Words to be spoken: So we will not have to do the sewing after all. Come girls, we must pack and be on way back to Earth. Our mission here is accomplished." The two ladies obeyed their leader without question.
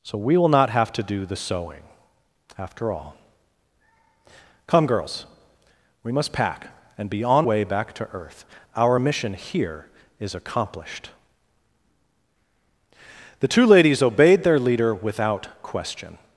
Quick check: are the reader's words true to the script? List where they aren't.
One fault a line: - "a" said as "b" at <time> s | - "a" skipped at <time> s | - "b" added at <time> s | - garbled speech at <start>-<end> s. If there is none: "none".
none